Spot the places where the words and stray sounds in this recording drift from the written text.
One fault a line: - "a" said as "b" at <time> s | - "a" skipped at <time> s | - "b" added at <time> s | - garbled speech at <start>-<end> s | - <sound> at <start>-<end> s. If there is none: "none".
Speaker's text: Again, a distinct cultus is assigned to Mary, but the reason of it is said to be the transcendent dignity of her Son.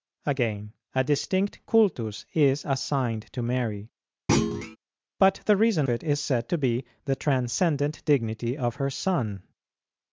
- thud at 4.3-4.8 s
- "of" skipped at 5.9 s